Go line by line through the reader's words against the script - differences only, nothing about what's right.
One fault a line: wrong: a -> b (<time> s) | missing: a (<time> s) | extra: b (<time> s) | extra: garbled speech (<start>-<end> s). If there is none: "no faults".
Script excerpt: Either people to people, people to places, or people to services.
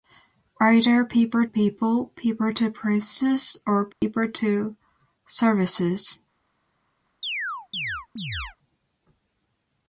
missing: to (1.4 s)